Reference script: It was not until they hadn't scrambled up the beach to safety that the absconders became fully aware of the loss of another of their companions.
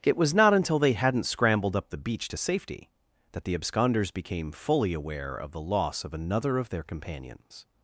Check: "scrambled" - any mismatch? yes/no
no